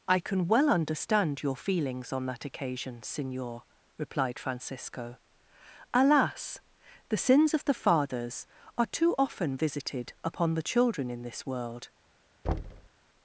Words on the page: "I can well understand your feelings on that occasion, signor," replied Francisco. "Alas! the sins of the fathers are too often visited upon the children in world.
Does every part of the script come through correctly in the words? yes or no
no